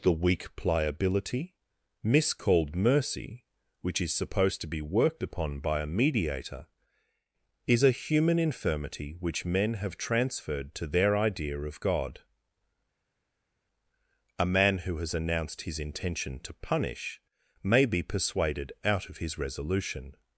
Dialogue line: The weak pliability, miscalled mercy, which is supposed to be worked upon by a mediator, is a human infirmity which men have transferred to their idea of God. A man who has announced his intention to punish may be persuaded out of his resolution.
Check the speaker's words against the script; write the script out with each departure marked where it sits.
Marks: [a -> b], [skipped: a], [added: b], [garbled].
The weak pliability, miscalled mercy, which is supposed to be worked upon by a mediator, is a human infirmity which men have transferred to their idea of God. A man who has announced his intention to punish may be persuaded out of his resolution.